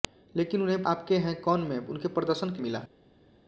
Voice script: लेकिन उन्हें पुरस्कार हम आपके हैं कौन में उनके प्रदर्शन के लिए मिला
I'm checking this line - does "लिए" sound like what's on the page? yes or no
no